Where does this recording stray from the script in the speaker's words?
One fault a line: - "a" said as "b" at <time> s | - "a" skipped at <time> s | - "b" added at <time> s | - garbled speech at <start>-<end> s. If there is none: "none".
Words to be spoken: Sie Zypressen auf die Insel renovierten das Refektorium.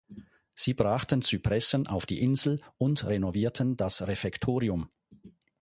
- "brachten" added at 0.7 s
- "und" added at 2.8 s